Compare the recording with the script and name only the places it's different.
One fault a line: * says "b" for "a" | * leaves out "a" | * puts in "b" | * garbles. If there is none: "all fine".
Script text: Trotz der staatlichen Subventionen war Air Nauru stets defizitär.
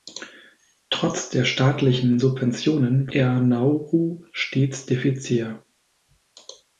* leaves out "war"